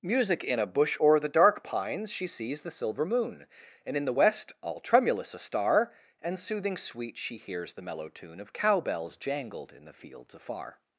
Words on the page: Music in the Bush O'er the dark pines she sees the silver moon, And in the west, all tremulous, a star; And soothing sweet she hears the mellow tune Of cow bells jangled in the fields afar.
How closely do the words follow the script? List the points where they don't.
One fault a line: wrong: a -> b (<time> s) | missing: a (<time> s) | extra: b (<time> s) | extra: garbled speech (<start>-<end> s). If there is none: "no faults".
wrong: the -> a (0.6 s)